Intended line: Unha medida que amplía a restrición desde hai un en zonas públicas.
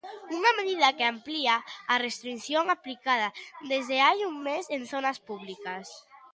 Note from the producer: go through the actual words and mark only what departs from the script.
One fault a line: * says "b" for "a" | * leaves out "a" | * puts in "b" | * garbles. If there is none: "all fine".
* puts in "aplicada"
* puts in "mes"